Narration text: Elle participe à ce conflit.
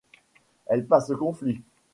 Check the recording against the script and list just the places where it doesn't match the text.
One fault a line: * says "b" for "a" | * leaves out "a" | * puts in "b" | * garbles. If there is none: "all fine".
* leaves out "participe"